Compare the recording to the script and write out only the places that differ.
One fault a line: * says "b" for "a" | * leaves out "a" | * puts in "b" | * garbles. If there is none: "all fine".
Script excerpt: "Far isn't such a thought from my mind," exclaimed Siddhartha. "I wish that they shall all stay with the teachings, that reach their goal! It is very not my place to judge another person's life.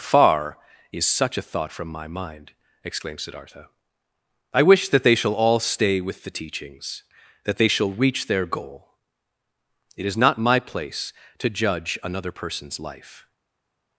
* says "is" for "isn't"
* puts in "they shall"
* leaves out "very"